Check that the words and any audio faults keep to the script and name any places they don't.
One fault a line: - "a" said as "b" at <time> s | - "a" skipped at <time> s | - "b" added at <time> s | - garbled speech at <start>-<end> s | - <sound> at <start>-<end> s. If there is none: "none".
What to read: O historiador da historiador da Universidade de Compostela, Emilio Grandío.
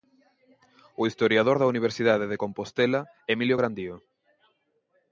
- "historiador da" skipped at 1.7 s